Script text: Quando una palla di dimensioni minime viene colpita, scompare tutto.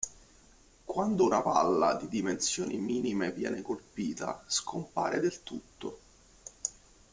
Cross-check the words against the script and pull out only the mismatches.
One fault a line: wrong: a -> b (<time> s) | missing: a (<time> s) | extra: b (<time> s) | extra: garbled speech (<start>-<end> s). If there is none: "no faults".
extra: del (5.2 s)